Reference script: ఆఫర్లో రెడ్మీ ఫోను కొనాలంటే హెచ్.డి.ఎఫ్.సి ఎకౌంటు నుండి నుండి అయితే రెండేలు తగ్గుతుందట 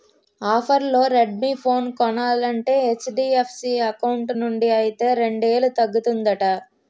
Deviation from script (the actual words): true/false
true